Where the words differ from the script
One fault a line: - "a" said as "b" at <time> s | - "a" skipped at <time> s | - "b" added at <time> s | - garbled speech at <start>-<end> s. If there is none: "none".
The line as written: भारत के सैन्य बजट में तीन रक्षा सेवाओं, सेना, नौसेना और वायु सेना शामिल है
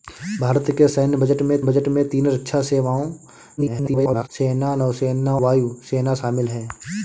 - "बजट में" added at 1.6 s
- garbled speech at 3.6-4.3 s
- "और" skipped at 5.4 s